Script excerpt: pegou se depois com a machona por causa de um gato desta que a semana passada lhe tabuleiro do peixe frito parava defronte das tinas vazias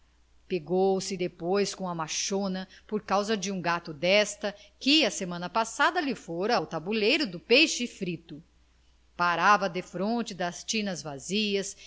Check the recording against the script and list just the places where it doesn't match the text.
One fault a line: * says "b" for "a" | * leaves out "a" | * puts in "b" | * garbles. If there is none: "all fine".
* puts in "fora ao"